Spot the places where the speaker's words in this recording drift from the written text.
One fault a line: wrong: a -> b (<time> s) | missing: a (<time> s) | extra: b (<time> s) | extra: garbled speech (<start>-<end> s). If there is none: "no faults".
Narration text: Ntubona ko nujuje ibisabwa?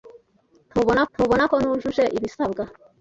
extra: ntubona (1.1 s)